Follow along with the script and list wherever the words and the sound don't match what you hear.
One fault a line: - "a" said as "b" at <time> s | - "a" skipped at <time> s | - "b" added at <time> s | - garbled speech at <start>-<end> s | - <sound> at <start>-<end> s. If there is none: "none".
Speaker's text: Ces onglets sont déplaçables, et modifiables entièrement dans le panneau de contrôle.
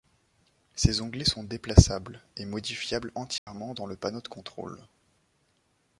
- dropout at 3.4-3.5 s